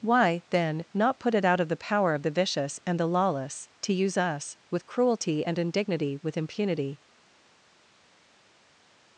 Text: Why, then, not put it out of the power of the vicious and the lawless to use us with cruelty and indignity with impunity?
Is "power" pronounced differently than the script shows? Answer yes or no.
no